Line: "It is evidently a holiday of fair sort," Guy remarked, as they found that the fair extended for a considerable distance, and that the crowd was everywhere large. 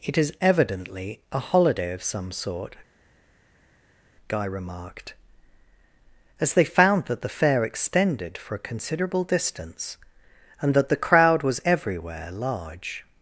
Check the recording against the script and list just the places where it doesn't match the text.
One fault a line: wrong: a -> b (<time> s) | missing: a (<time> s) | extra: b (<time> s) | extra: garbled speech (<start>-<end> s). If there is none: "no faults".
wrong: fair -> some (2.0 s)